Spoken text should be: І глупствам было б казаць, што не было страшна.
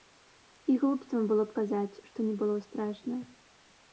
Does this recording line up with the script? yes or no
yes